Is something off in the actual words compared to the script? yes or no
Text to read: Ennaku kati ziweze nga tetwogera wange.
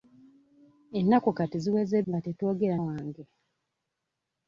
no